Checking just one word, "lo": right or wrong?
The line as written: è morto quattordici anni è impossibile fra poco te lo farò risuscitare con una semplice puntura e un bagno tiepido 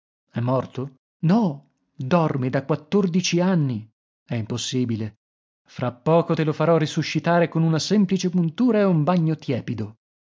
right